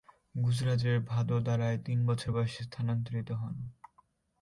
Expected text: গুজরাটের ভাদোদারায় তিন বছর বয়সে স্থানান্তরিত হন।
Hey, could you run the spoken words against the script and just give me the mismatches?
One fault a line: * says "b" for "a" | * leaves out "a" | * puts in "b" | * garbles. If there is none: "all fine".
all fine